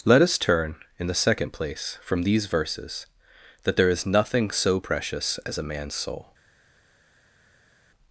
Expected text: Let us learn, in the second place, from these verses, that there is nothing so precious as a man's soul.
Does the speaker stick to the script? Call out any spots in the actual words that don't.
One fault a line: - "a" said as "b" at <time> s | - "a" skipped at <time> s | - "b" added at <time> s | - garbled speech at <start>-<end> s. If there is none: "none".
- "learn" said as "turn" at 0.4 s